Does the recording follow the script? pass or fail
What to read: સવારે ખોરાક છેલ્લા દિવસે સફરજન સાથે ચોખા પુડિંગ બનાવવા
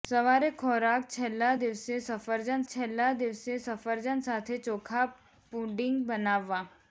fail